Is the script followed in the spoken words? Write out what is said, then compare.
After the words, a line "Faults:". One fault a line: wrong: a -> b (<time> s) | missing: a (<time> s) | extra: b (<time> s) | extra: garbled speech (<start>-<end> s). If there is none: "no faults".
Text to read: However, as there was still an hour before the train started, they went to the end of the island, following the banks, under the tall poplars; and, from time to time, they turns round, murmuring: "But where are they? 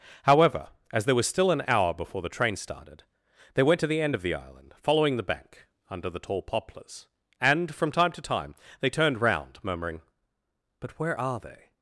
However, as there was still an hour before the train started, they went to the end of the island, following the bank, under the tall poplars; and, from time to time, they turned round, murmuring: "But where are they?
Faults:
wrong: banks -> bank (5.2 s)
wrong: turns -> turned (8.9 s)